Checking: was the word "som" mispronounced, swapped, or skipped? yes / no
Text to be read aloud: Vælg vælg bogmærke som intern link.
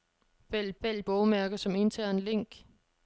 no